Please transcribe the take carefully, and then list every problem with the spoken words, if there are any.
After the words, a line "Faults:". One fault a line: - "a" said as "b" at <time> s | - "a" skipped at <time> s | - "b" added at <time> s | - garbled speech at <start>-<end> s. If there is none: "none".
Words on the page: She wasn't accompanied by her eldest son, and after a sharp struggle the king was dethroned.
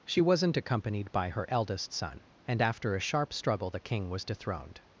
She wasn't accompanied by her eldest son, and after a sharp struggle the king was dethroned.
Faults:
none